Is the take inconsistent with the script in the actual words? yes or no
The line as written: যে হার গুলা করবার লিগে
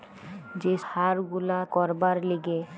no